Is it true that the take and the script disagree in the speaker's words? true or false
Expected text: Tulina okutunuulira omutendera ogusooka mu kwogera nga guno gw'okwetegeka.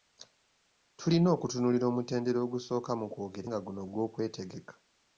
false